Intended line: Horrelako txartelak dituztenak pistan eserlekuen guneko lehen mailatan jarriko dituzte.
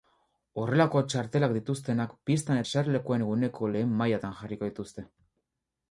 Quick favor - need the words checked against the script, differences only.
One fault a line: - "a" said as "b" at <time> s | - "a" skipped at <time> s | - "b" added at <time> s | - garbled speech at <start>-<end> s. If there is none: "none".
none